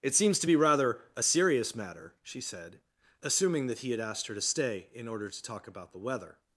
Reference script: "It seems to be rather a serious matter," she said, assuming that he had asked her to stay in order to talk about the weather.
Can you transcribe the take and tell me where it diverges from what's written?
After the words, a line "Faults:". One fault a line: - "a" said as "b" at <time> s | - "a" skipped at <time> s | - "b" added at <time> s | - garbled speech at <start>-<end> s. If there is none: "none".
"It seems to be rather a serious matter," she said, assuming that he had asked her to stay in order to talk about the weather.
Faults:
none